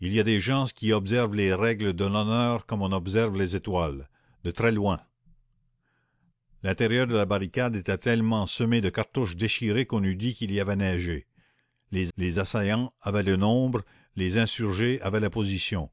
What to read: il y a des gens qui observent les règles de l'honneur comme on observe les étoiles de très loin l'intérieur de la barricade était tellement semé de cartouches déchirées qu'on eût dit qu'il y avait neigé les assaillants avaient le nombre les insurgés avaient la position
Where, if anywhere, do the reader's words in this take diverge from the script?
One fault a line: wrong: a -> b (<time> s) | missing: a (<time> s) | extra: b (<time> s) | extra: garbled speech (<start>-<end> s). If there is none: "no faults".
extra: les (12.2 s)